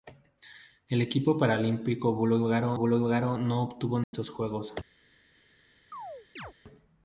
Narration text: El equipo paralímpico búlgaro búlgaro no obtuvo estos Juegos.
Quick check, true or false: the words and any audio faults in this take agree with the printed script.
false